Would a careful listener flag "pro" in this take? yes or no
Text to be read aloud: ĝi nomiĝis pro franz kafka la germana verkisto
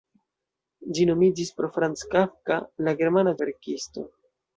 no